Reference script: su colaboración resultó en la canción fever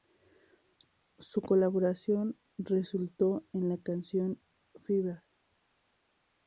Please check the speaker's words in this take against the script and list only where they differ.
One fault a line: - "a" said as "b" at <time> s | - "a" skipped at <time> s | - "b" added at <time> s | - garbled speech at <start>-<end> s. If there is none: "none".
none